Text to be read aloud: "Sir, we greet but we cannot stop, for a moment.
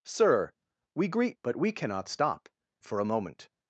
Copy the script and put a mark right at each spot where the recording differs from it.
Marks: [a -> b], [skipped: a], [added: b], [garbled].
"Sir, we greet but we cannot stop, for a moment.